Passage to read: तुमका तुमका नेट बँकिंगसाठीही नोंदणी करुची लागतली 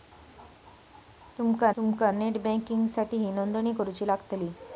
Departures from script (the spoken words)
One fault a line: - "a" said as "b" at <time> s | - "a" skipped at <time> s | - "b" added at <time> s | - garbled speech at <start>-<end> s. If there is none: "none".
none